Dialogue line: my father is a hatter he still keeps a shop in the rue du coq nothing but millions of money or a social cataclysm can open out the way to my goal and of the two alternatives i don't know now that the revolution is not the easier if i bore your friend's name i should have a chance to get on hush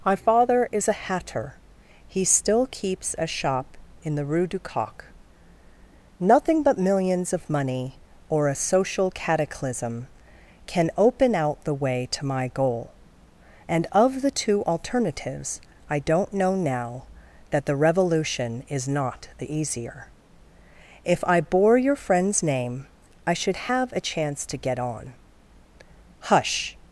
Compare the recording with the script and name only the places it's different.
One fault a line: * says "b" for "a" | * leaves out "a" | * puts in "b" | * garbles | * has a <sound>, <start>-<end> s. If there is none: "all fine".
all fine